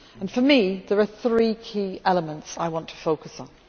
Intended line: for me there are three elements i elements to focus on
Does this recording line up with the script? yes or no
no